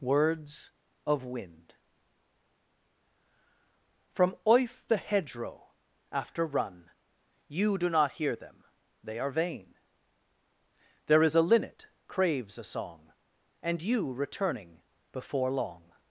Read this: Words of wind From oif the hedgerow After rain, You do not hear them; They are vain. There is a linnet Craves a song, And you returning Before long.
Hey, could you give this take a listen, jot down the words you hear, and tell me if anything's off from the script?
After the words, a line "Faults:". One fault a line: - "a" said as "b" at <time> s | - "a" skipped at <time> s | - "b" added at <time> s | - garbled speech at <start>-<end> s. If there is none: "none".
Words of wind From oif the hedgerow After run, You do not hear them; They are vain. There is a linnet Craves a song, And you returning Before long.
Faults:
- "rain" said as "run" at 6.4 s